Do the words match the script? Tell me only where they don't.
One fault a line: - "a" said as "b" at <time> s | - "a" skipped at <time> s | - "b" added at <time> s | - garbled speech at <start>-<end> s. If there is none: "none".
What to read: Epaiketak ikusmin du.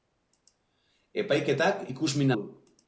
none